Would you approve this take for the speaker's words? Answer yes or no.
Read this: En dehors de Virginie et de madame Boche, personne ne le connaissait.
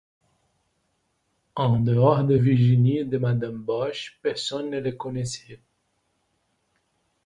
yes